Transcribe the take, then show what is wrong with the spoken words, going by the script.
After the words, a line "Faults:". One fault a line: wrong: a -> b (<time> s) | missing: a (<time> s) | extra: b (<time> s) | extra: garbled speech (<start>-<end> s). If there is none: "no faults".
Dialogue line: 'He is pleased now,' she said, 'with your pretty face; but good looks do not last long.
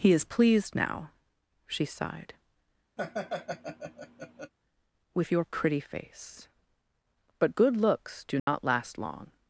'He is pleased now,' she sighed, 'with your pretty face; but good looks do not last long.
Faults:
wrong: said -> sighed (1.9 s)